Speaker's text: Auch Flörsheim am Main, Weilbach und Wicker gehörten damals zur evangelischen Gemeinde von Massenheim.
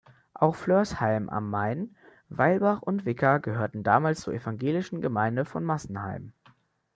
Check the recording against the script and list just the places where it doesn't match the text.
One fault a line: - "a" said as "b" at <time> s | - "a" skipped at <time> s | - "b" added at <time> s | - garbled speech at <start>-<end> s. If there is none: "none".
none